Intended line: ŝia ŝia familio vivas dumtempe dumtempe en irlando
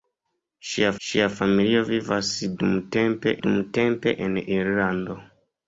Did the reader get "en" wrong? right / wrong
right